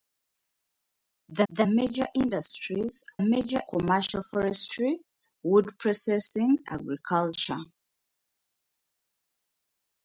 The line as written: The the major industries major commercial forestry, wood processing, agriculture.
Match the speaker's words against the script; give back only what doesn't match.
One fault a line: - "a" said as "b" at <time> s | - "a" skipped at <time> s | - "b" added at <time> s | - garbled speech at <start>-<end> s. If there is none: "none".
none